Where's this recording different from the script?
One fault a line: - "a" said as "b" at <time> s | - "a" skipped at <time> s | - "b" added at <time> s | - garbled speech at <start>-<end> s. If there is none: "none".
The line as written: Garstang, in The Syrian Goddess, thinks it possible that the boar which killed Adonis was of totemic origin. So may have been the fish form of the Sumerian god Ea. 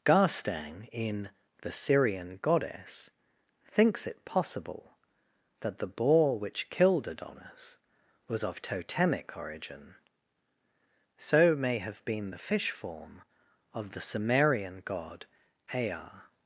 none